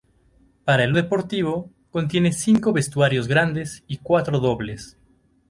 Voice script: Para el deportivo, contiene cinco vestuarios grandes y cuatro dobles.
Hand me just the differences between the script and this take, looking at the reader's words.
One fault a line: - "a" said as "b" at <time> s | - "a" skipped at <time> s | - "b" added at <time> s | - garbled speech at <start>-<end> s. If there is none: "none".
none